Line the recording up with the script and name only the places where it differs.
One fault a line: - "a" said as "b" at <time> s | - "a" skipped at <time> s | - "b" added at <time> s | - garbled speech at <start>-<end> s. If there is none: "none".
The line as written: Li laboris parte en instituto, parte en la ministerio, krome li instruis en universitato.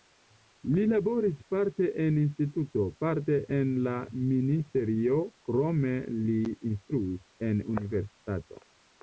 none